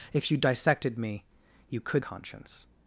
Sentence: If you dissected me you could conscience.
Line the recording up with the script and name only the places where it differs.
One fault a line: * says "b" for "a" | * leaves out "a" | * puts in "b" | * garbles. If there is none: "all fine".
all fine